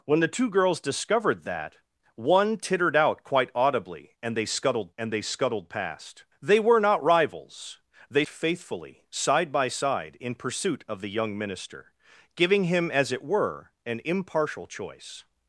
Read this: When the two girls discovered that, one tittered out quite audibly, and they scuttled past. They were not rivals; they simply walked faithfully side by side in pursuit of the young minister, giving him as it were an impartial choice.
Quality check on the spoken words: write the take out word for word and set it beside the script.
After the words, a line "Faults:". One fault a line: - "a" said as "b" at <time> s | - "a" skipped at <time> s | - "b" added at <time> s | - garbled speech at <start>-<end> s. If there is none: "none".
When the two girls discovered that, one tittered out quite audibly, and they scuttled and they scuttled past. They were not rivals; they faithfully side by side in pursuit of the young minister, giving him as it were an impartial choice.
Faults:
- "and they scuttled" added at 5.0 s
- "simply walked" skipped at 8.3 s